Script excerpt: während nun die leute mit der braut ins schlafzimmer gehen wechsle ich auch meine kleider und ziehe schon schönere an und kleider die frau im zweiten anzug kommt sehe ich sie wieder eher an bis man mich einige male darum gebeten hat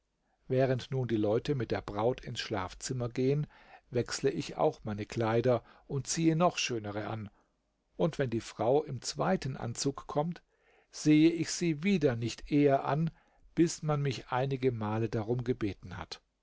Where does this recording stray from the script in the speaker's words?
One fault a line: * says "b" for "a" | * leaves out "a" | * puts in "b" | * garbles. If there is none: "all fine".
* says "noch" for "schon"
* says "wenn" for "kleider"
* puts in "nicht"